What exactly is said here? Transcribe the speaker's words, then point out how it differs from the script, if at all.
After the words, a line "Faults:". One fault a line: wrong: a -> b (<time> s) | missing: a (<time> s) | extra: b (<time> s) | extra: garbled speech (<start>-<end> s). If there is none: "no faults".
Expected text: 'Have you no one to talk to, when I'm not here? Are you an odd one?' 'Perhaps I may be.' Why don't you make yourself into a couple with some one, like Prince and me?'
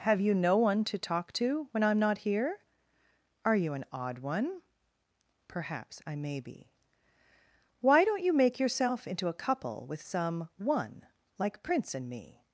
'Have you no one to talk to, when I'm not here? Are you an odd one?' 'Perhaps I may be.' Why don't you make yourself into a couple with some one, like Prince and me?'
Faults:
no faults